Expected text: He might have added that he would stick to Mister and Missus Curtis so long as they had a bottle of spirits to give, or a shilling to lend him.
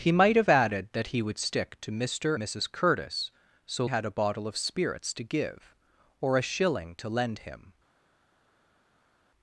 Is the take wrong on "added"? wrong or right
right